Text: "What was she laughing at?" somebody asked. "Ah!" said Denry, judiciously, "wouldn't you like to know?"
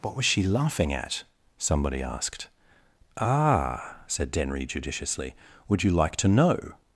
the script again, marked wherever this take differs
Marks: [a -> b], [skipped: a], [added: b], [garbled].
"What was she laughing at?" somebody asked. "Ah!" said Denry, judiciously, ["wouldn't -> would] you like to know?"